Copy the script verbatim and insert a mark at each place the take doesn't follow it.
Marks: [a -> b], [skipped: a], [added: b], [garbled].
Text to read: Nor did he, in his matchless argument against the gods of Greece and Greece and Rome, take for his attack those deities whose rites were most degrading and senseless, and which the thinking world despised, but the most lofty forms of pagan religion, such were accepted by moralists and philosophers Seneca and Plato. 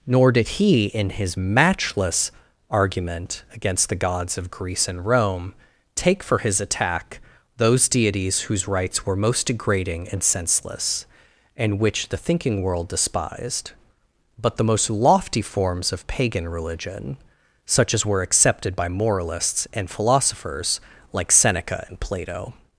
Nor did he, in his matchless argument against the gods of Greece and [skipped: Greece and] Rome, take for his attack those deities whose rites were most degrading and senseless, and which the thinking world despised, but the most lofty forms of pagan religion, such [added: as] were accepted by moralists and philosophers [added: like] Seneca and Plato.